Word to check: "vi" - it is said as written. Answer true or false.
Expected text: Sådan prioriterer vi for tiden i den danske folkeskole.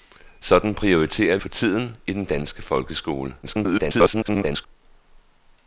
false